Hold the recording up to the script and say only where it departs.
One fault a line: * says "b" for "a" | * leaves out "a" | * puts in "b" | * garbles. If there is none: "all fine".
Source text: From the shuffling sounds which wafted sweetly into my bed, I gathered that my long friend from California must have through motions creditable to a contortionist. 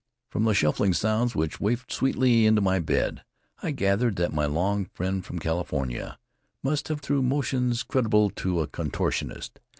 all fine